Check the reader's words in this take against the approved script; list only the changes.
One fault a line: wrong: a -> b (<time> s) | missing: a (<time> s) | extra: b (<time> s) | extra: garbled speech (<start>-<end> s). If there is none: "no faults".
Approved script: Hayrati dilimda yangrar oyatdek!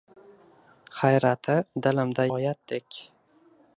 missing: yangrar (2.3 s)